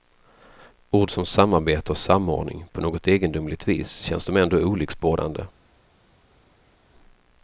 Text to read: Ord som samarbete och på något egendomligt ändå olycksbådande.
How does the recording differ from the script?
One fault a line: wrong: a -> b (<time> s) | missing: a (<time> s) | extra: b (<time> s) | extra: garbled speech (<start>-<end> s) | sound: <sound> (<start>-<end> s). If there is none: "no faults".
extra: samordning (2.0 s)
extra: vis känns de (3.7 s)